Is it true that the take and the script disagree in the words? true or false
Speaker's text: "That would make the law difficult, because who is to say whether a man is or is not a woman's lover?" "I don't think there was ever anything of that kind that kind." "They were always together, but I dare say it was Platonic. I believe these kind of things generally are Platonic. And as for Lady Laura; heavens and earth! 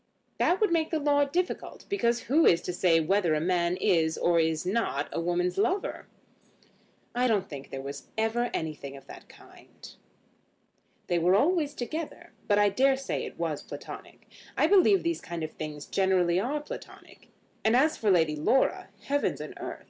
true